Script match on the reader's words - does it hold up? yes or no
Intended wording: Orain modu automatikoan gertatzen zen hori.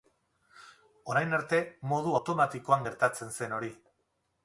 no